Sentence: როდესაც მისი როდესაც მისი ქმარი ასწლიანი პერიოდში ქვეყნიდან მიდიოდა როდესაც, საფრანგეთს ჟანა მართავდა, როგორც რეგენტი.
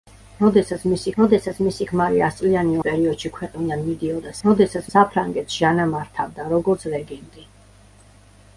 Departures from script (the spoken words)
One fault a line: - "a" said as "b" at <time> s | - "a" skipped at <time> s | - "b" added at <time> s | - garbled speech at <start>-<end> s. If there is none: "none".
none